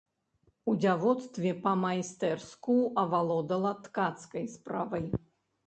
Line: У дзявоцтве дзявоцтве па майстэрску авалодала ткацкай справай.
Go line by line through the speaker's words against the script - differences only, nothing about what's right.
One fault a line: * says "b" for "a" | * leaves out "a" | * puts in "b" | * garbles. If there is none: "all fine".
* leaves out "дзявоцтве"